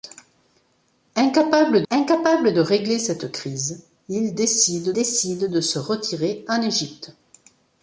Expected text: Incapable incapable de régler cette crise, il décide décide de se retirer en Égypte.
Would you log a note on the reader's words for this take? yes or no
no